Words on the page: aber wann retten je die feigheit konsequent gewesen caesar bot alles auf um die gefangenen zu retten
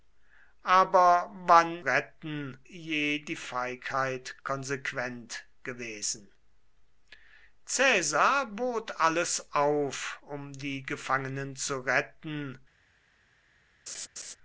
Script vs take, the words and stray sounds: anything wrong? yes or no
yes